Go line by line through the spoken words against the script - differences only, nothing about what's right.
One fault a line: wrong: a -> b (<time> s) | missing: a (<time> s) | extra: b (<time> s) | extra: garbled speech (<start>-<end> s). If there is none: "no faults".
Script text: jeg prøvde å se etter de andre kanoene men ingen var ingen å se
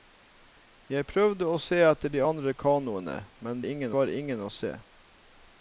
no faults